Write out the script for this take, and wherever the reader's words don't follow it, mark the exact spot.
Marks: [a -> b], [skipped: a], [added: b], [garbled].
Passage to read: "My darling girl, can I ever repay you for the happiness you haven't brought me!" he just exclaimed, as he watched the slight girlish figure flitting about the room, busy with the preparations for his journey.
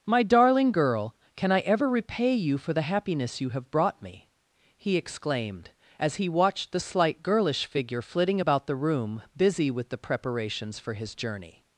"My darling girl, can I ever repay you for the happiness you [haven't -> have] brought me!" he [skipped: just] exclaimed, as he watched the slight girlish figure flitting about the room, busy with the preparations for his journey.